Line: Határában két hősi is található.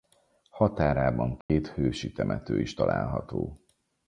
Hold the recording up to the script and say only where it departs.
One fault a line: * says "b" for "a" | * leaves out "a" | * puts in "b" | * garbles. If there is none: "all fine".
* puts in "temető"